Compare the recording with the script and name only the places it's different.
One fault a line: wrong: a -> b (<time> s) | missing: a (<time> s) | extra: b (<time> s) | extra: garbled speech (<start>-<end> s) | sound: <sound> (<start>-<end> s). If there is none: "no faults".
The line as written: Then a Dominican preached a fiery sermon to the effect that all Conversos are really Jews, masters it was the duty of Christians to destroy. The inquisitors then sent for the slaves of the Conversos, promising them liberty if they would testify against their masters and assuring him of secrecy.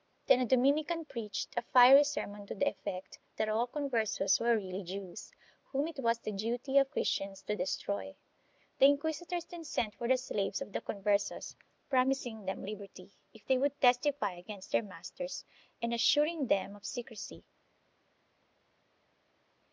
wrong: are -> were (4.4 s)
wrong: masters -> whom (5.7 s)
wrong: him -> them (16.4 s)